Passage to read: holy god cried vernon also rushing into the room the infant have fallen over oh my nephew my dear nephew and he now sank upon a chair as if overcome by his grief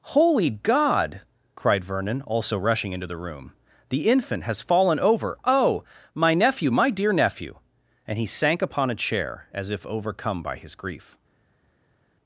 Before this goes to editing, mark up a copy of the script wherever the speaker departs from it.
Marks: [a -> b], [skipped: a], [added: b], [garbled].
holy god cried vernon also rushing into the room the infant [have -> has] fallen over oh my nephew my dear nephew and he [skipped: now] sank upon a chair as if overcome by his grief